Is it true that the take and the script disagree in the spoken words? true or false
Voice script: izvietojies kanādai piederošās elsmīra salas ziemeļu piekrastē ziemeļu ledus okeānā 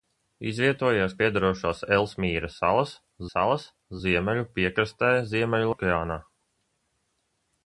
true